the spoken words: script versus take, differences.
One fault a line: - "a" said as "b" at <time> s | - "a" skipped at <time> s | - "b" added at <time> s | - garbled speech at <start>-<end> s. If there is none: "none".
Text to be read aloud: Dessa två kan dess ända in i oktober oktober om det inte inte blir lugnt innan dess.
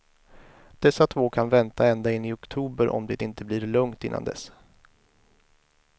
- "dess" said as "vänta" at 1.5 s
- "oktober" skipped at 2.9 s
- "inte" skipped at 3.4 s